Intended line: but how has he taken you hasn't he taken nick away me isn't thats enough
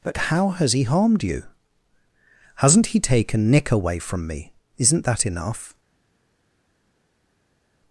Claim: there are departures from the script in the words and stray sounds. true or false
true